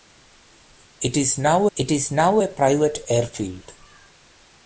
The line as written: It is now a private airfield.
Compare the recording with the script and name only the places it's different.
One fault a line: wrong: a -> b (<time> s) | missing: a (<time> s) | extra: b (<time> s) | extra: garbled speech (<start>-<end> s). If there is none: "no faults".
extra: it is now (1.7 s)